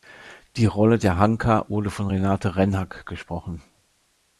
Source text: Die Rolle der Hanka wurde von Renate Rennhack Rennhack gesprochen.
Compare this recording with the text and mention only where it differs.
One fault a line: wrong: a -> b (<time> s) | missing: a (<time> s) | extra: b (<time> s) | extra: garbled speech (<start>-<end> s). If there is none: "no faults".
missing: Rennhack (3.1 s)